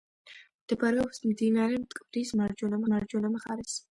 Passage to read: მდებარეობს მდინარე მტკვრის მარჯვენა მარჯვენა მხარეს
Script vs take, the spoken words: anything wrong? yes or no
no